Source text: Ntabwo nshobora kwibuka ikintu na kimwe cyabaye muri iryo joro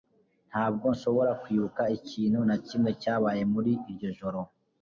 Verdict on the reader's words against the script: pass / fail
pass